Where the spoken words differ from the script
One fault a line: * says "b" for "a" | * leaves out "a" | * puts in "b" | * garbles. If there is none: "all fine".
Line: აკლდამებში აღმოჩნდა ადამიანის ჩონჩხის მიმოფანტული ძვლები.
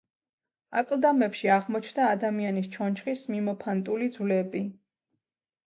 all fine